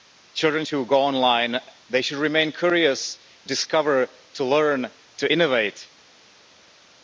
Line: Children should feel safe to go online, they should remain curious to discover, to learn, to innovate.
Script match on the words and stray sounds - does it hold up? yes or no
no